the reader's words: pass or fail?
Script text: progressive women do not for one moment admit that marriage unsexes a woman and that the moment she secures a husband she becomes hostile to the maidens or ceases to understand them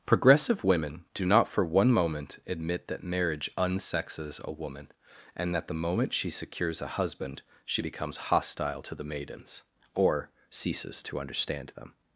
pass